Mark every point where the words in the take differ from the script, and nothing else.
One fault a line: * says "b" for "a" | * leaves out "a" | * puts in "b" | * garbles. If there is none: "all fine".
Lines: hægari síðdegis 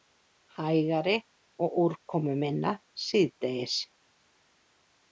* puts in "og úrkomuminna"